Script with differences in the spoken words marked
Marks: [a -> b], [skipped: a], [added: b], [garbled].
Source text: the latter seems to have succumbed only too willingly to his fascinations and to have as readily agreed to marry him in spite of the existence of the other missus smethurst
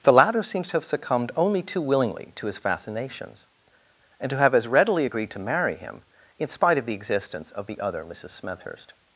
the latter seems to have succumbed only too willingly to his fascinations and to have as readily agreed to marry him in spite of the existence of the other missus smethurst